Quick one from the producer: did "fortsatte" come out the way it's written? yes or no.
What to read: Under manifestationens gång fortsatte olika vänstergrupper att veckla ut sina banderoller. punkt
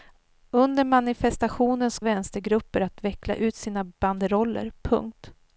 no